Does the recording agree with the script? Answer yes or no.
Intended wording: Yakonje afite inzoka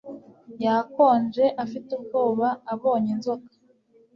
no